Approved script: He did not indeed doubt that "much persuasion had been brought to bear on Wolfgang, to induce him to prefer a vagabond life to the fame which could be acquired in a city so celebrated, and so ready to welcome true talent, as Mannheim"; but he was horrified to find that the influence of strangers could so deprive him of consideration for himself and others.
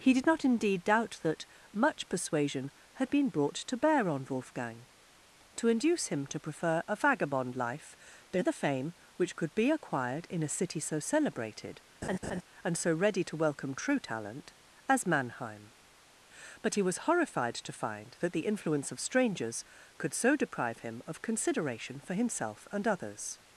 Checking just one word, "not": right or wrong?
right